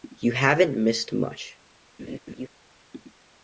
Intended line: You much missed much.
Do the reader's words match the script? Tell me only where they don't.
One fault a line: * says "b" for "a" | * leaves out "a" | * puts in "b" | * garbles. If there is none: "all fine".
* says "haven't" for "much"